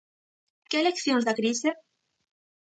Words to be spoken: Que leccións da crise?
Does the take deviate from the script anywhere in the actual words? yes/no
no